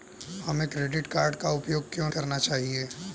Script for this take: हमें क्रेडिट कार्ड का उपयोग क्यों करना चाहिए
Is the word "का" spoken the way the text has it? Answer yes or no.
yes